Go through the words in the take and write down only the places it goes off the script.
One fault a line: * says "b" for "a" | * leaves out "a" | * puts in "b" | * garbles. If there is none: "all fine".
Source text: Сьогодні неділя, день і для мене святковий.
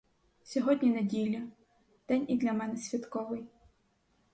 all fine